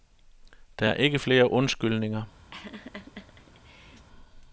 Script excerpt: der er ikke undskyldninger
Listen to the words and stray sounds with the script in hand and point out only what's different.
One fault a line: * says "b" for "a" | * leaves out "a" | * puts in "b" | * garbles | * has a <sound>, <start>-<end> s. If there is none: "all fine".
* puts in "flere"
* has a laugh, 2.5-4.1 s